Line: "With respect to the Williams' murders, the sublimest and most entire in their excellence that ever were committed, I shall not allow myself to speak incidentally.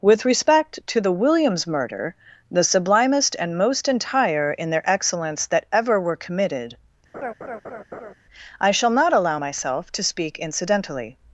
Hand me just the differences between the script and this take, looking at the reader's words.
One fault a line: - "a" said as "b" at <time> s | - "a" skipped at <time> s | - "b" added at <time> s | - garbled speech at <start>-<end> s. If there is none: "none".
- "murders" said as "murder" at 1.7 s